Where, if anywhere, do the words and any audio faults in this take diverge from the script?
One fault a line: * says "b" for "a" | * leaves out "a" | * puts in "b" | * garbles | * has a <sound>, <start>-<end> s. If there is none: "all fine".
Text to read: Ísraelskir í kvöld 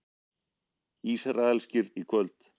all fine